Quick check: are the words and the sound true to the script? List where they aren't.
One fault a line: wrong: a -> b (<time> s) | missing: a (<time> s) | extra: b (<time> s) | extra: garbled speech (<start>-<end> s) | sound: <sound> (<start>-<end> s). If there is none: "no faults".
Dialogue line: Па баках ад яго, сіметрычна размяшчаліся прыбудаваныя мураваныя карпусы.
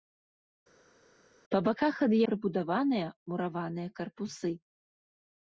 missing: яго сіметрычна размяшчаліся (2.1 s)